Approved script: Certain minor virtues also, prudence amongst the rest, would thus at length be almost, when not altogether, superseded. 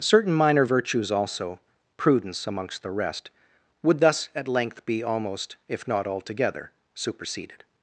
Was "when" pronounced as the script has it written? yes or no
no